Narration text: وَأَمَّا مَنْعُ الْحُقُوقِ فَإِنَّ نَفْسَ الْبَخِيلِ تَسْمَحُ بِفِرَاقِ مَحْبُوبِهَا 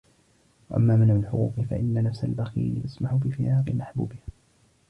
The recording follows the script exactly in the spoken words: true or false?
true